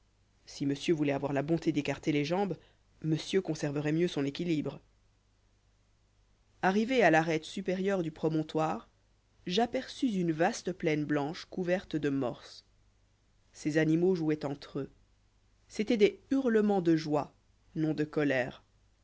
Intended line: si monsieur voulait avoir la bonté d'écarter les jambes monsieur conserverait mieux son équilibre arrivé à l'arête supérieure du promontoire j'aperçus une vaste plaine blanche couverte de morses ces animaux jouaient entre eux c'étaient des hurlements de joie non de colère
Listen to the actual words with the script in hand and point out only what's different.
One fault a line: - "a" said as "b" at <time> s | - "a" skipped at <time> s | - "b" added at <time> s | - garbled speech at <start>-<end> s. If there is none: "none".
none